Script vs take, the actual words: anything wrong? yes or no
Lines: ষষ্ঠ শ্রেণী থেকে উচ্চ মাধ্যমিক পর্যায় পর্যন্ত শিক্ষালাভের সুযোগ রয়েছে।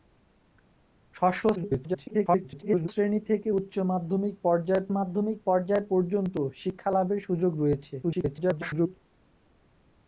yes